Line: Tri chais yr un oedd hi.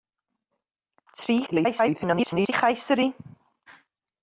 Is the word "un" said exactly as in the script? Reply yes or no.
no